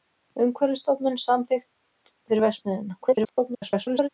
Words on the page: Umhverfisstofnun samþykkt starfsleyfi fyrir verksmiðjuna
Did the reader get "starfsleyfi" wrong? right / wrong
wrong